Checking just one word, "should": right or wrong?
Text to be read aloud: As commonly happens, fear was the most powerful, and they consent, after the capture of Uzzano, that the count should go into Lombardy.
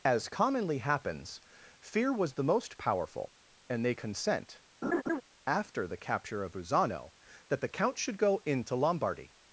right